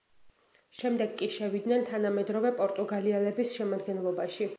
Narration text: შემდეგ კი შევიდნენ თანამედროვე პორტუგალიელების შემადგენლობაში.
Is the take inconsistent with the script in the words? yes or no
no